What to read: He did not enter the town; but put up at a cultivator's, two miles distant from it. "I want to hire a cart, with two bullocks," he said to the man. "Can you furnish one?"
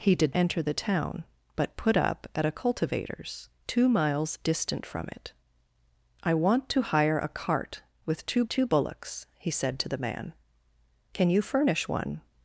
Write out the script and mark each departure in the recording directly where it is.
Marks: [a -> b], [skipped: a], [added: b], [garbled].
He did [skipped: not] enter the town; but put up at a cultivator's, two miles distant from it. "I want to hire a cart, with two [added: two] bullocks," he said to the man. "Can you furnish one?"